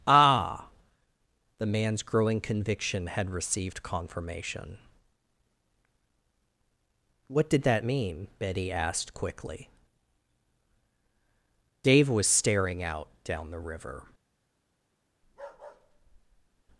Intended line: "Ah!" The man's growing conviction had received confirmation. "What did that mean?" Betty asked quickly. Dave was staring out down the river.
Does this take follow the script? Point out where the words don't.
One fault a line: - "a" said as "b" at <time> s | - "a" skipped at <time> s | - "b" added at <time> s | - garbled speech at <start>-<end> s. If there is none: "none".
none